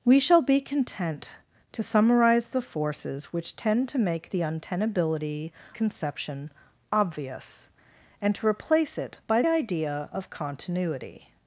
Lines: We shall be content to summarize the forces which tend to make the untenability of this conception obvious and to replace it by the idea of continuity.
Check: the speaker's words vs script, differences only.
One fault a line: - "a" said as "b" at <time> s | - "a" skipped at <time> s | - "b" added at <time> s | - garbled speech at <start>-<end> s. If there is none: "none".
- "of this" skipped at 5.5 s
- "the" skipped at 9.4 s